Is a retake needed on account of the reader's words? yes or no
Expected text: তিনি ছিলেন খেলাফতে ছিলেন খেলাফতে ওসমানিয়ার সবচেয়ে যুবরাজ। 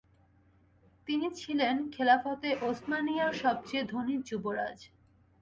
yes